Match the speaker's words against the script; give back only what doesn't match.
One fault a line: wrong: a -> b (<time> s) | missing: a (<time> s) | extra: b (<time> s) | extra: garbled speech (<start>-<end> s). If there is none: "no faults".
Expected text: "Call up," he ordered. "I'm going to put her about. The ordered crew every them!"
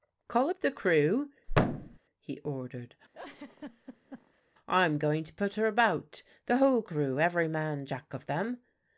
extra: the crew (0.6 s)
wrong: ordered -> whole (6.6 s)
extra: man Jack of (7.5 s)